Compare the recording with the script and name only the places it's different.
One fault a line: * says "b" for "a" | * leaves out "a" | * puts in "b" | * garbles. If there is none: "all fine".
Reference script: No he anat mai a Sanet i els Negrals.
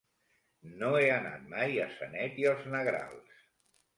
all fine